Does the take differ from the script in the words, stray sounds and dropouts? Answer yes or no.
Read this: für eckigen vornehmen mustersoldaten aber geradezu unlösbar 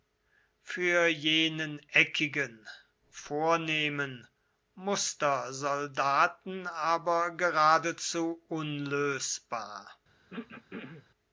yes